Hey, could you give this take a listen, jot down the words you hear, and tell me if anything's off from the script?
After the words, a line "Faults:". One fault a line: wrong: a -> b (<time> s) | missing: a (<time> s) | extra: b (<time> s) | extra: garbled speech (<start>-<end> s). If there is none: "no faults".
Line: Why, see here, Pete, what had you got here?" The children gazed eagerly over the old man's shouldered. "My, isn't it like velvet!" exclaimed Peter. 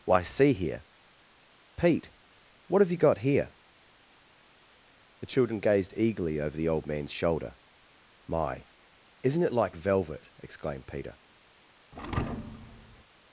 Why, see here, Pete, what have you got here?" The children gazed eagerly over the old man's shoulder. "My, isn't it like velvet!" exclaimed Peter.
Faults:
wrong: had -> have (2.8 s)
wrong: shouldered -> shoulder (7.1 s)